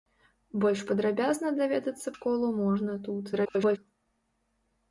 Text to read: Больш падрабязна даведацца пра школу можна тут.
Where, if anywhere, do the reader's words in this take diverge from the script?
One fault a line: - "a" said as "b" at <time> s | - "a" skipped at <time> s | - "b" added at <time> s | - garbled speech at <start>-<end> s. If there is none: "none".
- "пра" skipped at 2.1 s
- garbled speech at 3.3-3.8 s